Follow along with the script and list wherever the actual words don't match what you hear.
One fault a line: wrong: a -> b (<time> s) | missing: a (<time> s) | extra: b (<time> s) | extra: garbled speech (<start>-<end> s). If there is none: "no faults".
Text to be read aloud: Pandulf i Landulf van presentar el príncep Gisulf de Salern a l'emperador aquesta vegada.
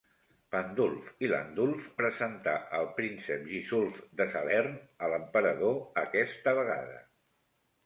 missing: van (1.9 s)